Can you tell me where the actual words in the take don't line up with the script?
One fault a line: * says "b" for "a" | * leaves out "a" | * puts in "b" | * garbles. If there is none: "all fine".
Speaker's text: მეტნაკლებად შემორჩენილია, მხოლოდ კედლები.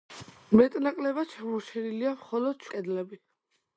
all fine